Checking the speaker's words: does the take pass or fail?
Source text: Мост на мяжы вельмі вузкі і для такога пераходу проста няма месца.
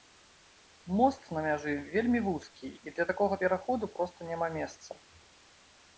pass